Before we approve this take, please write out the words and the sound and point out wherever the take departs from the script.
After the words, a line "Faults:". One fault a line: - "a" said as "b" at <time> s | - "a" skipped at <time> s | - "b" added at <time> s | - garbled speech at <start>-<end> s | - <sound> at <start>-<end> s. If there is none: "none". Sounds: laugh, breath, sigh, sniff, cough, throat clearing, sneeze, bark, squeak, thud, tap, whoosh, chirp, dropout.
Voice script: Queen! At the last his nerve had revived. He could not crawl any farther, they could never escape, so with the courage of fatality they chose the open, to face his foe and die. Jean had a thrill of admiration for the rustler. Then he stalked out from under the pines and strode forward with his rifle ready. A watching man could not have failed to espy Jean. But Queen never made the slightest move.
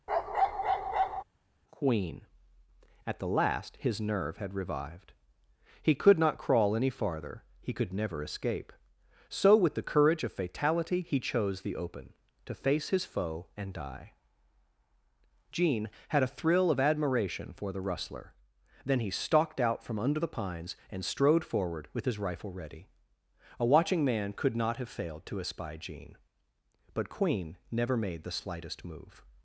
Queen! At the last his nerve had revived. He could not crawl any farther, he could never escape, so with the courage of fatality he chose the open, to face his foe and die. Jean had a thrill of admiration for the rustler. Then he stalked out from under the pines and strode forward with his rifle ready. A watching man could not have failed to espy Jean. But Queen never made the slightest move.
Faults:
- bark at 0.1-1.2 s
- "they" said as "he" at 7.6 s
- "they" said as "he" at 11.0 s